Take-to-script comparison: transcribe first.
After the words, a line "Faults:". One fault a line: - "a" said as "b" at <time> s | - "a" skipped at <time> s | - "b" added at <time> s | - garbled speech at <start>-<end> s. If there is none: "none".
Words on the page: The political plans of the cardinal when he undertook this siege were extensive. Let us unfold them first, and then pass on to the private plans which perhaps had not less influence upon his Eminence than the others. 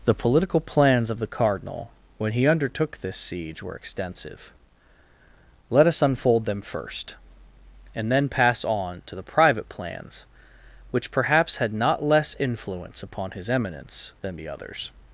The political plans of the cardinal when he undertook this siege were extensive. Let us unfold them first, and then pass on to the private plans which perhaps had not less influence upon his Eminence than the others.
Faults:
none